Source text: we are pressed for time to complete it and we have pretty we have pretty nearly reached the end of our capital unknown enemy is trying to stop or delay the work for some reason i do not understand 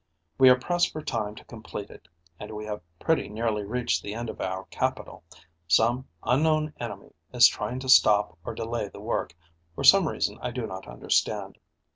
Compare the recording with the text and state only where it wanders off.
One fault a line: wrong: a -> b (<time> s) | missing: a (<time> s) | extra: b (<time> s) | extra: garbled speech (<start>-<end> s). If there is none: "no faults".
missing: we have pretty (3.3 s)
extra: some (5.7 s)